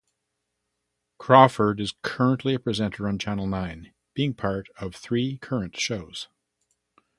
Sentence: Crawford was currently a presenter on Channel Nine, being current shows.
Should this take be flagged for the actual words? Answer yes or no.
yes